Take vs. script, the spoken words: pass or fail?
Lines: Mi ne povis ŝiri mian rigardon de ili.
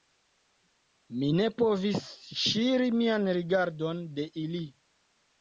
pass